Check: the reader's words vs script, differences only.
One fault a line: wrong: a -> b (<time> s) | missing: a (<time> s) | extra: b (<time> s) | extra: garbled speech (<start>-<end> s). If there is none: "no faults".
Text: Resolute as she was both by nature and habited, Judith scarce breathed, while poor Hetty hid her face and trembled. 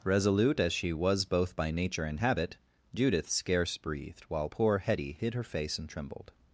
wrong: habited -> habit (2.2 s)